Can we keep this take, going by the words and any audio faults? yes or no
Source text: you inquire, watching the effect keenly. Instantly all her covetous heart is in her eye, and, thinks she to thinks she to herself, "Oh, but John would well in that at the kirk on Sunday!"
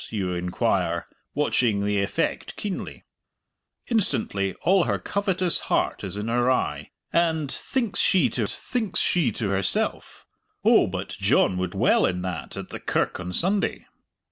yes